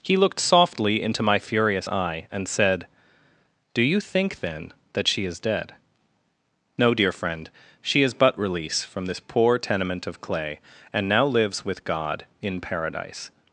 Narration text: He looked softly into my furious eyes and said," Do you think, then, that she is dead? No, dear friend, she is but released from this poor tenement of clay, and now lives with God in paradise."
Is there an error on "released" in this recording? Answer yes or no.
yes